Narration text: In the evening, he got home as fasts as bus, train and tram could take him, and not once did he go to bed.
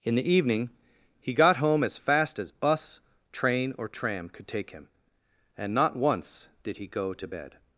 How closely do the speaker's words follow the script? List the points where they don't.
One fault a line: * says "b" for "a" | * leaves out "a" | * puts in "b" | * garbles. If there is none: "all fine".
* says "fast" for "fasts"
* says "or" for "and"